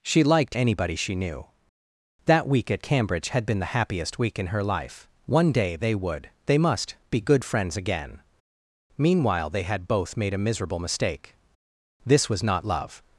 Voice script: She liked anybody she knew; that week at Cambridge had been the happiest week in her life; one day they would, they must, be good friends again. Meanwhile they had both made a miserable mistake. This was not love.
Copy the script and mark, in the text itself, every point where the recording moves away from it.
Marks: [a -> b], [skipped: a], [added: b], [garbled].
She liked anybody she knew; that week at Cambridge had been the happiest week in her life; one day they would, they must, be good friends again. Meanwhile they had both made a miserable mistake. This was not love.